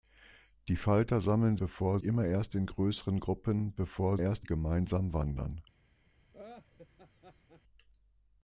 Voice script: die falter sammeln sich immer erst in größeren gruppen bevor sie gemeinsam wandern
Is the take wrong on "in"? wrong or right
right